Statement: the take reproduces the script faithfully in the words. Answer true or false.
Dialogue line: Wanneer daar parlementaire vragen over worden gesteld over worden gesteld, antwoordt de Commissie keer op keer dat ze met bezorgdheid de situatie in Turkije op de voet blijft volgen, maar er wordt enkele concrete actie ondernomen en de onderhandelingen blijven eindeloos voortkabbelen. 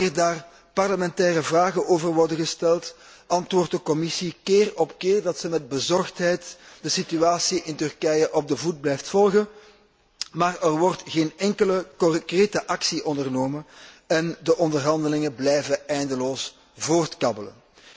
false